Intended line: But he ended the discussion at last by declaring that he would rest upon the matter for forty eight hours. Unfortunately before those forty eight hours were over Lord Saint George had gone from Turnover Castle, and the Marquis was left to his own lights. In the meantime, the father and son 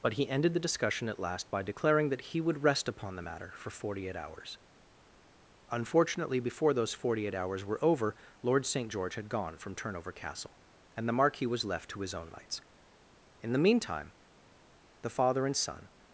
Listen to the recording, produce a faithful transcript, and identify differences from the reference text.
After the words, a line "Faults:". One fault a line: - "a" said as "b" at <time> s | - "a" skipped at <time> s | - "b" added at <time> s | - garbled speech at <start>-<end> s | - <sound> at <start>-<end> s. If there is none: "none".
But he ended the discussion at last by declaring that he would rest upon the matter for forty eight hours. Unfortunately before those forty eight hours were over Lord Saint George had gone from Turnover Castle, and the Marquis was left to his own lights. In the meantime, the father and son
Faults:
none